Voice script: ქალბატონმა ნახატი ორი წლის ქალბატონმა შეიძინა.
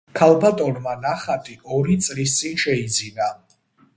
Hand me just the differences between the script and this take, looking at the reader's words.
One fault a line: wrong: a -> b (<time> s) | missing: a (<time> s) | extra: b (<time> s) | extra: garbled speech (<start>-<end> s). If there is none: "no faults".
wrong: ქალბატონმა -> წინ (2.4 s)